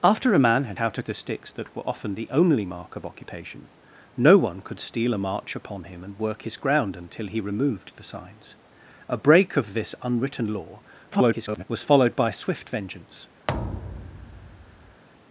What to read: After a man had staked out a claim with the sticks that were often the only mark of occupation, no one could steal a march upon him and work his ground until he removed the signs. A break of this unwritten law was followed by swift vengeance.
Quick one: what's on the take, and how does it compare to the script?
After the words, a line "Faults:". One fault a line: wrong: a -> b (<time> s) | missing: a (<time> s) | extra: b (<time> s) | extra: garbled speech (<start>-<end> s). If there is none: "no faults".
After a man had out a the sticks that were often the only mark of occupation, no one could steal a march upon him and work his ground until he removed the signs. A break of this unwritten law [garbled] was followed by swift vengeance.
Faults:
missing: staked (0.8 s)
missing: claim with (1.0 s)
extra: garbled speech (11.1-11.6 s)